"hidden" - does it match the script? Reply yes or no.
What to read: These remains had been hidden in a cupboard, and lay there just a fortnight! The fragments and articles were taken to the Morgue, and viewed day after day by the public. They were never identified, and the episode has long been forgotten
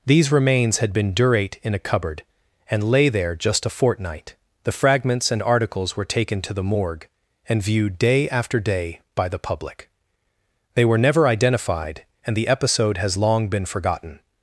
no